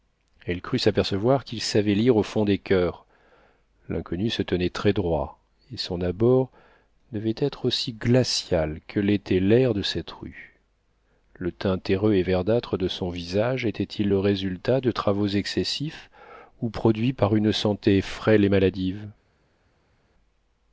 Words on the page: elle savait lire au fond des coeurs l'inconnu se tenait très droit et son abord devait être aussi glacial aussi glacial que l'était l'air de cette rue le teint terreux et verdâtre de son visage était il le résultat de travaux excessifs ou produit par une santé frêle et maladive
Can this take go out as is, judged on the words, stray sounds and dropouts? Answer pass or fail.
fail